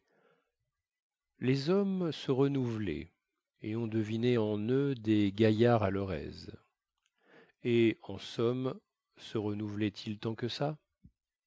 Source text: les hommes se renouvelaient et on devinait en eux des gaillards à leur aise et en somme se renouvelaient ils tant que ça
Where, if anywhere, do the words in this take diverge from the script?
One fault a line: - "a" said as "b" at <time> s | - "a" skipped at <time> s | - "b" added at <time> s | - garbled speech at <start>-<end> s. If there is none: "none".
none